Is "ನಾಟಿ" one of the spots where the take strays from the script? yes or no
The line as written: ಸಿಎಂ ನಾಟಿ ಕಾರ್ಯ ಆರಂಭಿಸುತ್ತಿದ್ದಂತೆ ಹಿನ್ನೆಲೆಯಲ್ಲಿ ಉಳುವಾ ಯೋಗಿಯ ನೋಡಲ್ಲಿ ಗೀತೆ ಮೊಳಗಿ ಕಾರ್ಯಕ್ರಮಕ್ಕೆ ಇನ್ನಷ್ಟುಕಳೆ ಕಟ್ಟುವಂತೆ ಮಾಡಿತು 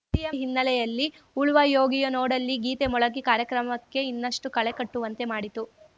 yes